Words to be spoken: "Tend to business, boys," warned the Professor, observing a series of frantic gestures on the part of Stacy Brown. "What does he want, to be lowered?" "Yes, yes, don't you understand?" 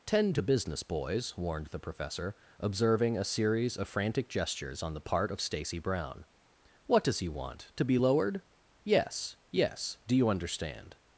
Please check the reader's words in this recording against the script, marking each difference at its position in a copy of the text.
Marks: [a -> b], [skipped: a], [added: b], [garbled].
"Tend to business, boys," warned the Professor, observing a series of frantic gestures on the part of Stacy Brown. "What does he want, to be lowered?" "Yes, yes, [don't -> do] you understand?"